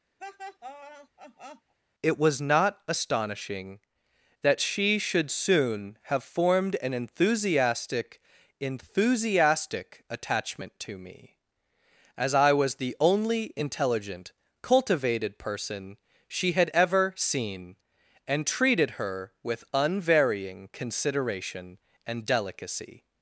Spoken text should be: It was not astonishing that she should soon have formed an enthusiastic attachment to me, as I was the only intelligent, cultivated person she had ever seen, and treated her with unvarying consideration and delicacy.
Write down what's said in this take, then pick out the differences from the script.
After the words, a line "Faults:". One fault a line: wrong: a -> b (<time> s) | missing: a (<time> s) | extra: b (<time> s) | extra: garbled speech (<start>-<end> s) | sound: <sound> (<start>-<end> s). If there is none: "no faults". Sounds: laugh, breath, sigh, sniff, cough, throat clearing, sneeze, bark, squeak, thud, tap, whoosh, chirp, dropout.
It was not astonishing that she should soon have formed an enthusiastic enthusiastic attachment to me, as I was the only intelligent, cultivated person she had ever seen, and treated her with unvarying consideration and delicacy.
Faults:
sound: laugh (0.2-1.7 s)
extra: enthusiastic (8.6 s)